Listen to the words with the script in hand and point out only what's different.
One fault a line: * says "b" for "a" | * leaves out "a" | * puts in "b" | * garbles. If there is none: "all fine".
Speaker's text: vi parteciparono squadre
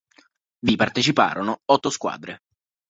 * puts in "otto"